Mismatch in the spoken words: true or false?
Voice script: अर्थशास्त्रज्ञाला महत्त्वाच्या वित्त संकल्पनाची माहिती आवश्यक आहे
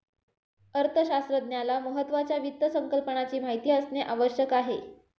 true